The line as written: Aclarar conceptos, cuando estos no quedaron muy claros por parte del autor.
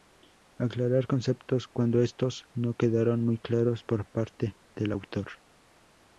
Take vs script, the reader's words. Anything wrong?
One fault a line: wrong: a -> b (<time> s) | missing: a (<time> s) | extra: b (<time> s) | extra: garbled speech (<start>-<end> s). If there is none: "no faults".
no faults